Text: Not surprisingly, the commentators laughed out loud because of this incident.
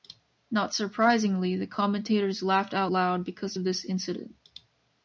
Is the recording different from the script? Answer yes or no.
no